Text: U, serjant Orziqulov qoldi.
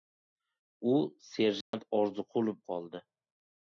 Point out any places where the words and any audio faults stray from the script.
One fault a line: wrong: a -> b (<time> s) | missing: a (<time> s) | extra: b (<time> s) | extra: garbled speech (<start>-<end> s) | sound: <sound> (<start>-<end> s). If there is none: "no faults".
sound: dropout (1.6-1.7 s)